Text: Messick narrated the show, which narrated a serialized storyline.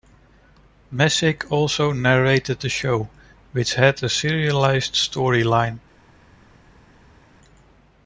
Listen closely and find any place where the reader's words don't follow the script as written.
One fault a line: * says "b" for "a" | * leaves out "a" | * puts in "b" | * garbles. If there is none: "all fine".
* puts in "also"
* says "had" for "narrated"